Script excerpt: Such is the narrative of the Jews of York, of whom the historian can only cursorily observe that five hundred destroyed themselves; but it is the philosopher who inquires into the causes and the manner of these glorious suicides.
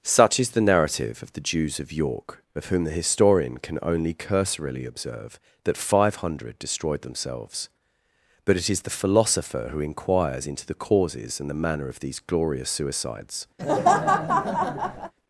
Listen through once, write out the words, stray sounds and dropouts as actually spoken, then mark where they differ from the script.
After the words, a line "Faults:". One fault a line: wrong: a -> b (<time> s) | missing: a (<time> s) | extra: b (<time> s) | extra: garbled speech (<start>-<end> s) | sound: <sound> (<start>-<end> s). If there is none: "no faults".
Such is the narrative of the Jews of York, of whom the historian can only cursorily observe that five hundred destroyed themselves; but it is the philosopher who inquires into the causes and the manner of these glorious suicides.
Faults:
sound: laugh (13.6-15.1 s)